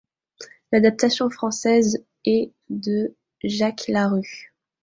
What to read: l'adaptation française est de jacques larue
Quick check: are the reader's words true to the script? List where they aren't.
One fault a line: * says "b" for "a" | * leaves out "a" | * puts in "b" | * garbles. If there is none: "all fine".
all fine